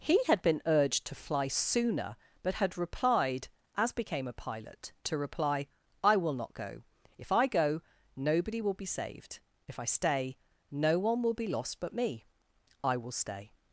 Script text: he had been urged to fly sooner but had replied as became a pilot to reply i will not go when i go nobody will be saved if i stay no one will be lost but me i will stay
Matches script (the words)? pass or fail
fail